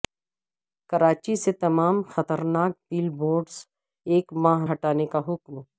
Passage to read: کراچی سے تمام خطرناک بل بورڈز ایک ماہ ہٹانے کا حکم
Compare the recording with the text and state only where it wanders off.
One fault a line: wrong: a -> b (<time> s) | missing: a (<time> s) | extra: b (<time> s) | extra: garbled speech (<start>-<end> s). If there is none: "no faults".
no faults